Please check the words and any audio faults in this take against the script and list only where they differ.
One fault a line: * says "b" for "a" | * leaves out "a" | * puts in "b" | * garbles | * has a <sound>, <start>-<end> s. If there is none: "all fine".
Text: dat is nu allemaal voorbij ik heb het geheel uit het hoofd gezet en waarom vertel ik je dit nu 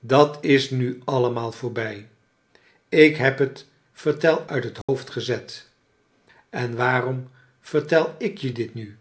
* says "vertel" for "geheel"
* has a dropout, 4.8-4.9 s